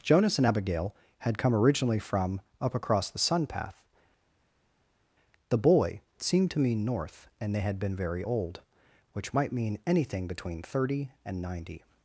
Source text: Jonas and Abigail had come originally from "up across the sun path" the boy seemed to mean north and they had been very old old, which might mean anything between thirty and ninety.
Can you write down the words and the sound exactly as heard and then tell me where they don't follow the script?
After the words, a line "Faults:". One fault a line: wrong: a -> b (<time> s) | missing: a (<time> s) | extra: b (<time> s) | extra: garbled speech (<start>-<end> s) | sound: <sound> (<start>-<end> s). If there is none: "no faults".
Jonas and Abigail had come originally from "up across the sun path" the boy seemed to mean north and they had been very old, which might mean anything between thirty and ninety.
Faults:
missing: old (8.6 s)